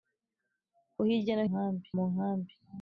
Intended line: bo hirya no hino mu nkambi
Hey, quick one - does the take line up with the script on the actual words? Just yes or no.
no